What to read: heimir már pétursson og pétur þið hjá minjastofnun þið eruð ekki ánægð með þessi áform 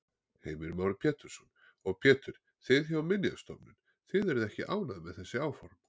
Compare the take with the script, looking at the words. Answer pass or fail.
pass